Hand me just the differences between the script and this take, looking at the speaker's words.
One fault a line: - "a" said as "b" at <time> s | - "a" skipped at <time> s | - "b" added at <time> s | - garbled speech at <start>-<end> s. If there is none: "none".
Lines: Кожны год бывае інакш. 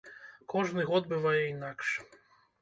none